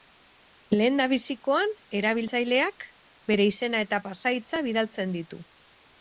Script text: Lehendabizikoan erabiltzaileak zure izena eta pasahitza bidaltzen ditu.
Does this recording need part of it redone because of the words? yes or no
yes